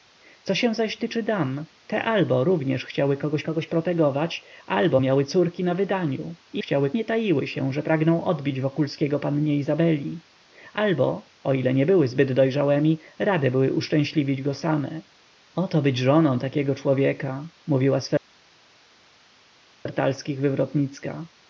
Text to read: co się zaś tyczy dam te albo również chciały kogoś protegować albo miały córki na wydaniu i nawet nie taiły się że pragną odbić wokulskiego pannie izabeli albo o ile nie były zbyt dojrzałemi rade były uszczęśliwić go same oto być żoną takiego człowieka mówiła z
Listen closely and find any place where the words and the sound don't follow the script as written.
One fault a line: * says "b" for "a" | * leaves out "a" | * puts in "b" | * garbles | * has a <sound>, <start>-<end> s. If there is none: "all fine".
* puts in "kogoś"
* says "chciały" for "nawet"